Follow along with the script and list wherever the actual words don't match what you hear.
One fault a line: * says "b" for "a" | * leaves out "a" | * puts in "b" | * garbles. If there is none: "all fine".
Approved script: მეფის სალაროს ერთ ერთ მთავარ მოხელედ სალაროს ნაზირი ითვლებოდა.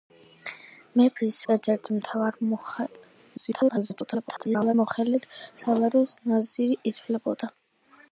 * leaves out "სალაროს"
* garbles